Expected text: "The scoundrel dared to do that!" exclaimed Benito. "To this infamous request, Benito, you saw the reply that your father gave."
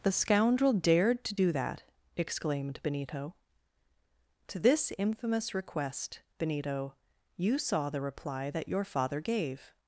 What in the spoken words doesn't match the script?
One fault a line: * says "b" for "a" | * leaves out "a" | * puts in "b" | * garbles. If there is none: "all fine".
all fine